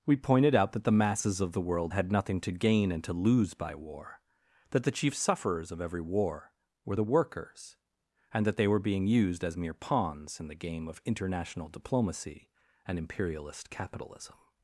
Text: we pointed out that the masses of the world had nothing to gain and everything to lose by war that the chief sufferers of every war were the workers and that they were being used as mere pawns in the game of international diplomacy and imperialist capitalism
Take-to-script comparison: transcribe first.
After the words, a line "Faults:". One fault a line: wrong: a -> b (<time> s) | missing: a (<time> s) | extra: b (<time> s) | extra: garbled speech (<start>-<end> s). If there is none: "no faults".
we pointed out that the masses of the world had nothing to gain and to lose by war that the chief sufferers of every war were the workers and that they were being used as mere pawns in the game of international diplomacy and imperialist capitalism
Faults:
missing: everything (3.0 s)